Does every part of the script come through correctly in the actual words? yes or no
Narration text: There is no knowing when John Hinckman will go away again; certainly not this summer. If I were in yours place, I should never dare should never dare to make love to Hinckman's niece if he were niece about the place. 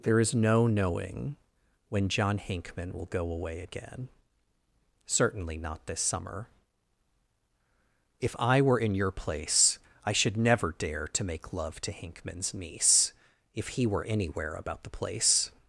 no